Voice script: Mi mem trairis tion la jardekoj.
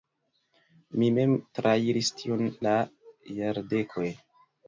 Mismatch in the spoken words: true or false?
false